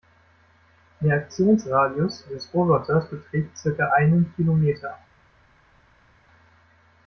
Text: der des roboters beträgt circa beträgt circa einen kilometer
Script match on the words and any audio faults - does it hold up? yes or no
no